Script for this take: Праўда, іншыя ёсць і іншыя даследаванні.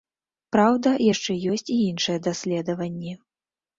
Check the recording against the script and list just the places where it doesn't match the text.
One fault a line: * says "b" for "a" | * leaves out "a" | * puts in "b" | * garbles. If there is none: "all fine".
* says "яшчэ" for "іншыя"